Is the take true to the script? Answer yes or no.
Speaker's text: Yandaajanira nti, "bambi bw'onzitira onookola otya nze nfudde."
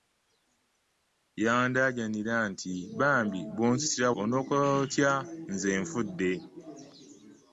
yes